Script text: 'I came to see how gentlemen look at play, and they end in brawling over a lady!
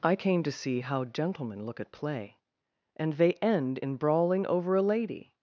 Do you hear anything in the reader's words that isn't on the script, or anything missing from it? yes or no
no